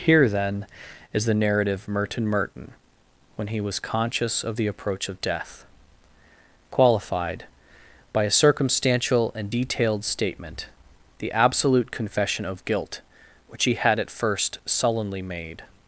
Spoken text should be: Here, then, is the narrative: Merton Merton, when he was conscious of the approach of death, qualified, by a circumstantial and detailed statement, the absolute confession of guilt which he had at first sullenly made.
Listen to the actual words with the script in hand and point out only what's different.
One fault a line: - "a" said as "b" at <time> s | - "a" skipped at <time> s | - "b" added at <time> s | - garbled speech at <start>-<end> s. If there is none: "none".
none